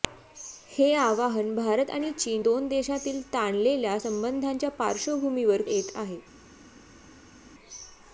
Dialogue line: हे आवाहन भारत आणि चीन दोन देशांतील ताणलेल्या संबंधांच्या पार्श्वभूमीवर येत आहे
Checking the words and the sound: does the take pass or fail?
pass